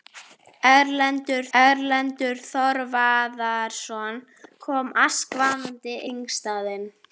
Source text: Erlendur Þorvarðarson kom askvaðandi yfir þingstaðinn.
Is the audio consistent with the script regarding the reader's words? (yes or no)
no